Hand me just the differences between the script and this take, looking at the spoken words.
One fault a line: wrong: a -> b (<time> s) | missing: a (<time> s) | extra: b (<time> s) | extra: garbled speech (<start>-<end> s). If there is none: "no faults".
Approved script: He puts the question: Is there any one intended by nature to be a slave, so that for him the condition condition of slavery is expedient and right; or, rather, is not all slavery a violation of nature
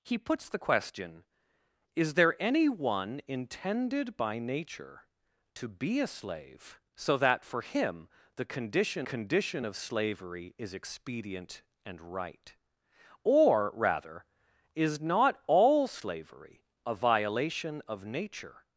no faults